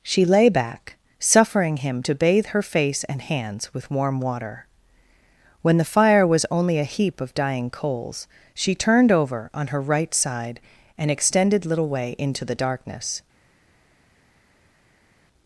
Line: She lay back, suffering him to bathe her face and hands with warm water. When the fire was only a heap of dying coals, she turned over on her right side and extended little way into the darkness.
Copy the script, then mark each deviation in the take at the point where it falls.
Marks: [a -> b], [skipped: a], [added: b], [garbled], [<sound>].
She lay back, suffering him to bathe her face and hands with warm water. When the fire was only a heap of dying coals, she turned over on her right side and extended little way into the darkness.